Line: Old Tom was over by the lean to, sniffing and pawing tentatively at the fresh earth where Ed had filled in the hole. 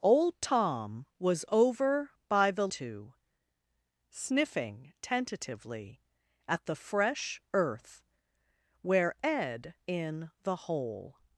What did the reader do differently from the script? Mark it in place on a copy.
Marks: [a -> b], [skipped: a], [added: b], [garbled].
Old Tom was over by the [skipped: lean] to, sniffing [skipped: and pawing] tentatively at the fresh earth where Ed [skipped: had filled] in the hole.